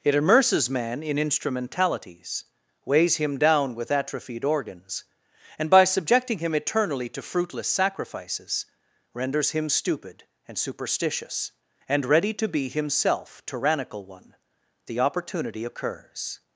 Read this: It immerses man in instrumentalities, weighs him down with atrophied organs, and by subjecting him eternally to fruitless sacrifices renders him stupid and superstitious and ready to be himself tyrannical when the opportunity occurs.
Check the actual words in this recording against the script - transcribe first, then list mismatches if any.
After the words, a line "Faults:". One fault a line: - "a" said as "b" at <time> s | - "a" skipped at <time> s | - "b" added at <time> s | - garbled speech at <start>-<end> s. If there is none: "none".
It immerses man in instrumentalities, weighs him down with atrophied organs, and by subjecting him eternally to fruitless sacrifices renders him stupid and superstitious and ready to be himself tyrannical one the opportunity occurs.
Faults:
- "when" said as "one" at 14.1 s